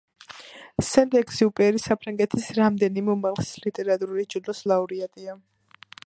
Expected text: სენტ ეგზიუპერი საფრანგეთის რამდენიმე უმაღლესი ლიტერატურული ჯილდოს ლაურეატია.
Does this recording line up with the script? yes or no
yes